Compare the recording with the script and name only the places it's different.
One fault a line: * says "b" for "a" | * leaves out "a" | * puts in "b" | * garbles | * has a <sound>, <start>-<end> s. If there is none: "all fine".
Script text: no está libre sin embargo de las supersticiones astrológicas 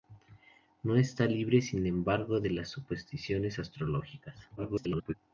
* garbles